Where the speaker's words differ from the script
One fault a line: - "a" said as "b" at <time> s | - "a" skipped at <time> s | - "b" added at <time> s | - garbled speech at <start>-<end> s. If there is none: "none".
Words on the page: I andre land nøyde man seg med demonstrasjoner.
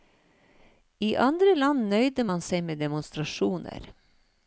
none